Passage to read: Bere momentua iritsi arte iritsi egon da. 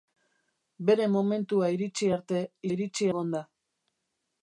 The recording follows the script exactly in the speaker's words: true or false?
true